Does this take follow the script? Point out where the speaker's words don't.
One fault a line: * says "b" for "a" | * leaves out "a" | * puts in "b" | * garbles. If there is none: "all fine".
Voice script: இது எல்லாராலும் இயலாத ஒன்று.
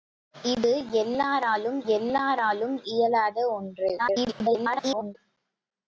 * puts in "எல்லாராலும்"
* garbles